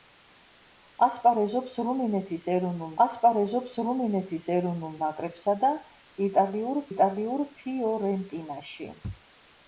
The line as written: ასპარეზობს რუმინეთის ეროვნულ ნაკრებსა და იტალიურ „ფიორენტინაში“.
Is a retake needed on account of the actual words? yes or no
yes